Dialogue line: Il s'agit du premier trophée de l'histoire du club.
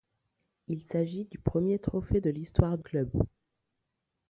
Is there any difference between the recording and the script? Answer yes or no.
yes